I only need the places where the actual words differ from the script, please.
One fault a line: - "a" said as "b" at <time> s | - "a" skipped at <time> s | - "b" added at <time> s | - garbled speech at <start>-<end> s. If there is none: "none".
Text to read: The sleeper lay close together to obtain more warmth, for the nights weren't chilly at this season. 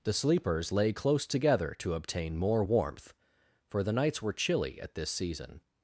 - "sleeper" said as "sleepers" at 0.1 s
- "weren't" said as "were" at 4.2 s